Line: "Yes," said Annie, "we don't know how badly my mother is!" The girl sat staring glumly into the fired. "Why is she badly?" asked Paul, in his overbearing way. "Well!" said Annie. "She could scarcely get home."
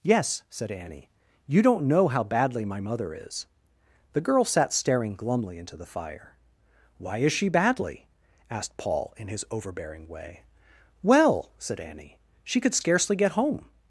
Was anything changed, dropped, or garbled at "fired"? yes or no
yes